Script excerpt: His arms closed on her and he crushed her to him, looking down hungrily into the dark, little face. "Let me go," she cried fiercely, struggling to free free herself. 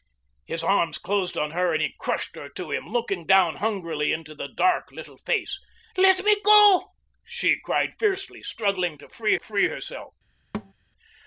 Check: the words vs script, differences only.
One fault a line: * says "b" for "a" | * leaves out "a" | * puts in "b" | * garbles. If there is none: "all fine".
all fine